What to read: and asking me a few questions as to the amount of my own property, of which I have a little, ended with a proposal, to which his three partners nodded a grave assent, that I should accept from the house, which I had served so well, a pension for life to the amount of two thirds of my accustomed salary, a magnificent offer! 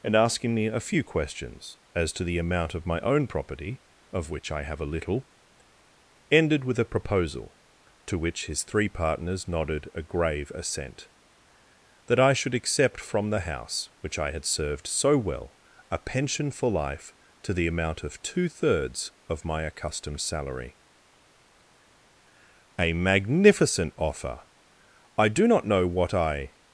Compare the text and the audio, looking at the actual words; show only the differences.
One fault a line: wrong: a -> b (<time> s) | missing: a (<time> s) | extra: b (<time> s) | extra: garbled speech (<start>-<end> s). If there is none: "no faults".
extra: I do not know what I (25.2 s)